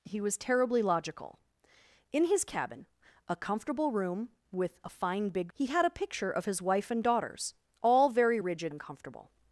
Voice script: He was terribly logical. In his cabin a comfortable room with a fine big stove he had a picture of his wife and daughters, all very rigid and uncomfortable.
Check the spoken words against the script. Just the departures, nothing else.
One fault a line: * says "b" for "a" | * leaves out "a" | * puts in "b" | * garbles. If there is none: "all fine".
* leaves out "stove"
* leaves out "and"